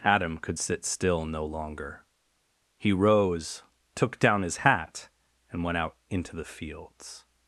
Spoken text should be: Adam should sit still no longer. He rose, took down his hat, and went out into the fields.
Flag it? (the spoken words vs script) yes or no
yes